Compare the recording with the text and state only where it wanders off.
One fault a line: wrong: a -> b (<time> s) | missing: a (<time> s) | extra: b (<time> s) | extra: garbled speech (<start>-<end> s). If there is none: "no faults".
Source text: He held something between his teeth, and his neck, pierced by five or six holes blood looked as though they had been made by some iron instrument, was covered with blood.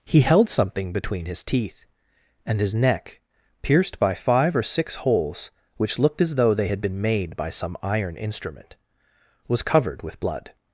wrong: blood -> which (5.8 s)